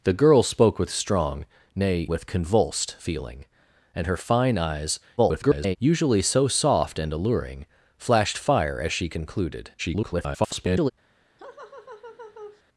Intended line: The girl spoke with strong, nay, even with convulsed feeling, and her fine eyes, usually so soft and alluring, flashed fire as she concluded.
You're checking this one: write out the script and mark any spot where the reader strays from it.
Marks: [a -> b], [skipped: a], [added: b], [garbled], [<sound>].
The girl spoke with strong, nay, [skipped: even] with convulsed feeling, and her fine eyes, [garbled] usually so soft and alluring, flashed fire as she concluded. [garbled] [laugh]